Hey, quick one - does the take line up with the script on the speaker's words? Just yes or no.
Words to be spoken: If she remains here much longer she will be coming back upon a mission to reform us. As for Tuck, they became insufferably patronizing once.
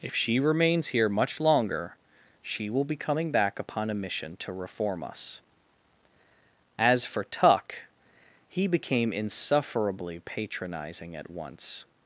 no